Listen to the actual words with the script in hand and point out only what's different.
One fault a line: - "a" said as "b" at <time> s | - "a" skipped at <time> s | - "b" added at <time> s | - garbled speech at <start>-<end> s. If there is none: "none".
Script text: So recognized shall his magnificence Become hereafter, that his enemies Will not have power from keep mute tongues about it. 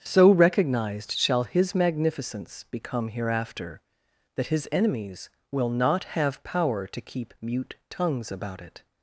- "from" said as "to" at 6.9 s